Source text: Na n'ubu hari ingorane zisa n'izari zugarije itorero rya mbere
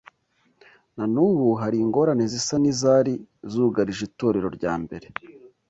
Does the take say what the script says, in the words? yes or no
yes